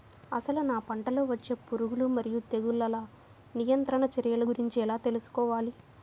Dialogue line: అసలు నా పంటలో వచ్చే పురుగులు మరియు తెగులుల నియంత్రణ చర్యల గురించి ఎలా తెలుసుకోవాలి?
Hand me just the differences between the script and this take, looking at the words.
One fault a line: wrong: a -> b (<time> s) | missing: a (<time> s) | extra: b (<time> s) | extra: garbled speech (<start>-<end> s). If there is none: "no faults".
no faults